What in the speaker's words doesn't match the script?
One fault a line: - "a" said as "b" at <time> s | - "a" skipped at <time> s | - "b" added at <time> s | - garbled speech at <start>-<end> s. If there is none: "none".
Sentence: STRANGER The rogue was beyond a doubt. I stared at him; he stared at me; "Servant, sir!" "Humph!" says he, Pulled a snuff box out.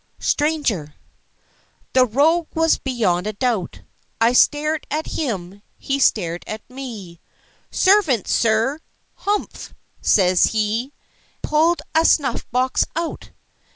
none